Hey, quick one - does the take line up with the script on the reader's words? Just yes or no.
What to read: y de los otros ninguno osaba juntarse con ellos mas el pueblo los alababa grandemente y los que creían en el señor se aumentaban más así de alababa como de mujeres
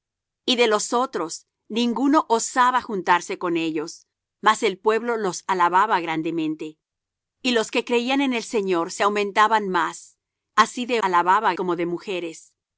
yes